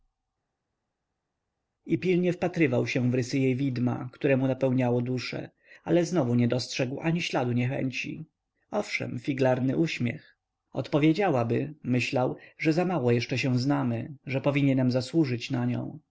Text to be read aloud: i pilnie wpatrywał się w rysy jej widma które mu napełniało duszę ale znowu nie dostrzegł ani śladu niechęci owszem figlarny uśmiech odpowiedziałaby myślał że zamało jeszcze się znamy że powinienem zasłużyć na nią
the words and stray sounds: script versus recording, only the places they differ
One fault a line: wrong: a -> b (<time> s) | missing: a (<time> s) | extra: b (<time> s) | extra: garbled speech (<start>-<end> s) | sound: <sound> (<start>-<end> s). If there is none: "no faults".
no faults